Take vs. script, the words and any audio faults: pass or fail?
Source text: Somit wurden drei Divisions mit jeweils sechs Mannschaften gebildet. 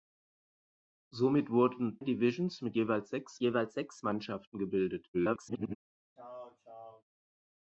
fail